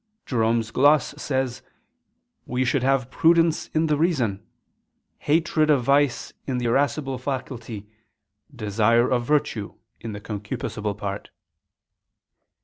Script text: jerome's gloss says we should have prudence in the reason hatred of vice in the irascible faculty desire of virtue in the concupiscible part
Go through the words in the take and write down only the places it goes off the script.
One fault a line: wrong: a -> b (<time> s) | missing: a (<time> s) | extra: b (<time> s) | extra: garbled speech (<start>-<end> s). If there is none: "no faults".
no faults